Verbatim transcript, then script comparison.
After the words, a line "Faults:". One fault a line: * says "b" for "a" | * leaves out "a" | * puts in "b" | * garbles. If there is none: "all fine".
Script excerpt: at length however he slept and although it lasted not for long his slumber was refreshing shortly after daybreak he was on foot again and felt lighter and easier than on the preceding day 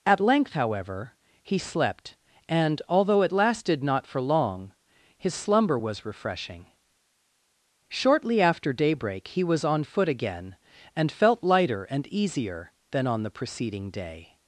at length however he slept and although it lasted not for long his slumber was refreshing shortly after daybreak he was on foot again and felt lighter and easier than on the preceding day
Faults:
all fine